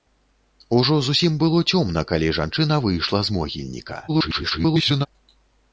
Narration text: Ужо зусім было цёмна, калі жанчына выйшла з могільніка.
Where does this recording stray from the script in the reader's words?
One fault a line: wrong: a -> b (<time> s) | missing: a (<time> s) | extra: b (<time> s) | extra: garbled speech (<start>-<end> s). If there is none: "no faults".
extra: garbled speech (4.1-5.1 s)